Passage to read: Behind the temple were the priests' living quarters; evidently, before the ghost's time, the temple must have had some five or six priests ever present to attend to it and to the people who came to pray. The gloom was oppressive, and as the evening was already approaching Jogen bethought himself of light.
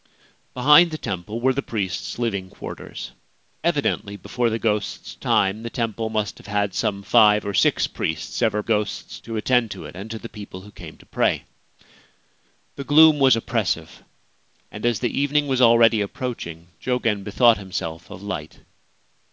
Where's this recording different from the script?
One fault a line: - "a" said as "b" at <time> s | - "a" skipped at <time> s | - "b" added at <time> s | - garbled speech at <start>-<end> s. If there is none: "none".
- "present" said as "ghost's" at 8.6 s